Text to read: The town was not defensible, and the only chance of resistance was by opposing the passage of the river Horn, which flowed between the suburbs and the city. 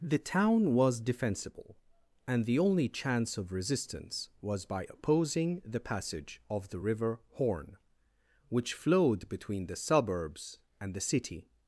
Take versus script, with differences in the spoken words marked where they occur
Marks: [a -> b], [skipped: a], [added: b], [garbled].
The town was [skipped: not] defensible, and the only chance of resistance was by opposing the passage of the river Horn, which flowed between the suburbs and the city.